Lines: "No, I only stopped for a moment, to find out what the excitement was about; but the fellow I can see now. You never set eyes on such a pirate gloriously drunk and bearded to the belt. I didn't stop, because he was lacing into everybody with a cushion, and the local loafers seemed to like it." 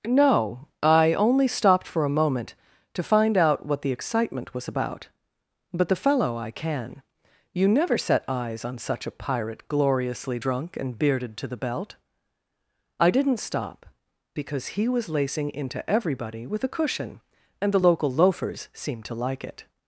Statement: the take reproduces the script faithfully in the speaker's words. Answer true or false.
false